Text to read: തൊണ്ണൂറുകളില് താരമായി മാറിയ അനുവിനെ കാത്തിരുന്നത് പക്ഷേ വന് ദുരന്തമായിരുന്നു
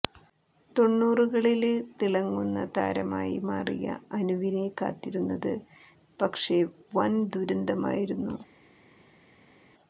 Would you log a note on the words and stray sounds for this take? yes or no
yes